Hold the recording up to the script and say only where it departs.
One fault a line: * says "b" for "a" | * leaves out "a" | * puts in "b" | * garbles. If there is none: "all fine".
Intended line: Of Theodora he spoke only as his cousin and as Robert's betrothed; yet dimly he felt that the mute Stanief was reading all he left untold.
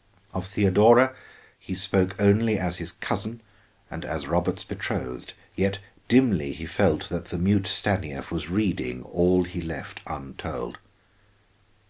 all fine